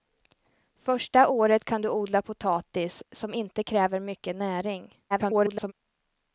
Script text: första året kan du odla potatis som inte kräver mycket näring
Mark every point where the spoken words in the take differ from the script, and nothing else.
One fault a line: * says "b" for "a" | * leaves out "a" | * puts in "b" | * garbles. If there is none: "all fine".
* garbles